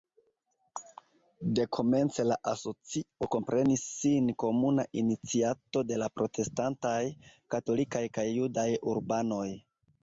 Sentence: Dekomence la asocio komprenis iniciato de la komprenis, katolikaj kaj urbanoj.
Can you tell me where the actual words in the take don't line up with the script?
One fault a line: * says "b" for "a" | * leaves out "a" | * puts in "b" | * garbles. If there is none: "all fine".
* puts in "sin komuna"
* says "protestantaj" for "komprenis"
* puts in "judaj"